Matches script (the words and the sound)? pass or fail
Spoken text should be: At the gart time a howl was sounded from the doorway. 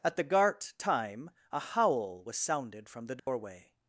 fail